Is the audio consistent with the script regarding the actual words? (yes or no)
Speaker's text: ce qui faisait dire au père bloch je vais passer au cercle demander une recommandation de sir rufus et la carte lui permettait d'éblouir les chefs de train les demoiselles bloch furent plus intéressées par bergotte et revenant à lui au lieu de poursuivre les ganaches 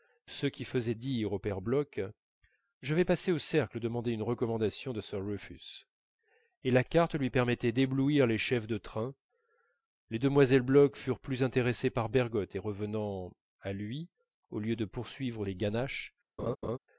yes